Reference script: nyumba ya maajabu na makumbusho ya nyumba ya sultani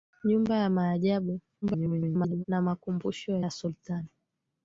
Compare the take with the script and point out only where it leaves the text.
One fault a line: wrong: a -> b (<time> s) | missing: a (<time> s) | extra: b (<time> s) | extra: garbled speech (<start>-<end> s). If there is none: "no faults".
extra: garbled speech (1.6-2.4 s)
missing: nyumba (3.4 s)